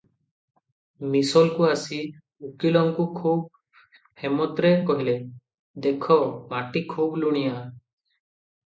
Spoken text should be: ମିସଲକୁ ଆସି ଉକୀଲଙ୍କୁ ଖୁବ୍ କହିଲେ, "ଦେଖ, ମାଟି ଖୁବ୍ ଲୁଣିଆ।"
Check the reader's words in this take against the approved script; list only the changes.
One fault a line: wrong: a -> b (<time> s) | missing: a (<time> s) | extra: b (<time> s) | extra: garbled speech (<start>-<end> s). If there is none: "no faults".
extra: ହେମତରେ (4.2 s)